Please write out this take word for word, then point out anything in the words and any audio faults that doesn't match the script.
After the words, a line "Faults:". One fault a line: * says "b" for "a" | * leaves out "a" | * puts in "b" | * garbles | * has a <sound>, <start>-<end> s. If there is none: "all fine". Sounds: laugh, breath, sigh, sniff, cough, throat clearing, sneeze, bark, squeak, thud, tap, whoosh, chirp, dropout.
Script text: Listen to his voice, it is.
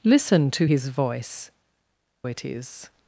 Listen to his voice, it is.
Faults:
all fine